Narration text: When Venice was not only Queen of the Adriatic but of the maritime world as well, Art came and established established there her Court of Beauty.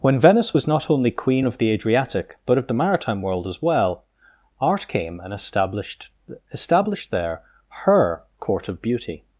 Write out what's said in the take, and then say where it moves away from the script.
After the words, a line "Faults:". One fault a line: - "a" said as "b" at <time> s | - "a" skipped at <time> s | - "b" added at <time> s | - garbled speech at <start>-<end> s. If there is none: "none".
When Venice was not only Queen of the Adriatic but of the maritime world as well, Art came and established established there her Court of Beauty.
Faults:
none